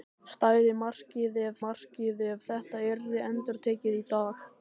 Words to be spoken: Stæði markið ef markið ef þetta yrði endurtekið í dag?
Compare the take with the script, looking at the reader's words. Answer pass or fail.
pass